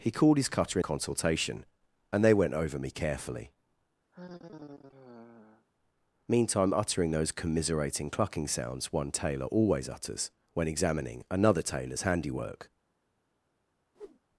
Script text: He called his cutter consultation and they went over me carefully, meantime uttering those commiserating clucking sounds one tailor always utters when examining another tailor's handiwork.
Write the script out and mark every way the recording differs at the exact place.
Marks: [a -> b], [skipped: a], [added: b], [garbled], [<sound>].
He called his cutter consultation and they went over me carefully, [sigh] meantime uttering those commiserating clucking sounds one tailor always utters when examining another tailor's handiwork. [whoosh]